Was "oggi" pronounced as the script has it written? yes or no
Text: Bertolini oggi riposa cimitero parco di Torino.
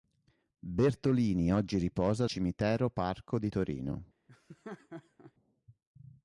yes